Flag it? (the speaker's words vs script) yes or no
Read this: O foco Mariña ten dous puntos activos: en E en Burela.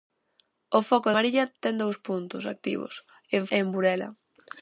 no